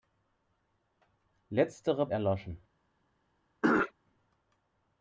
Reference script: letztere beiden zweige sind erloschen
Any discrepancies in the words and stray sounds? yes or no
yes